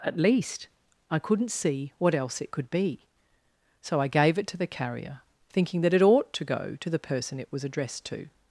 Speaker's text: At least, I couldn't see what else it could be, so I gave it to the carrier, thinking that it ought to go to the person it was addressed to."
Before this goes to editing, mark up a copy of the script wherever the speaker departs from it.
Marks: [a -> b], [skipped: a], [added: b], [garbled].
At least, I couldn't see what else it could be, so I gave it to the carrier, thinking that it ought to go to the person it was addressed to."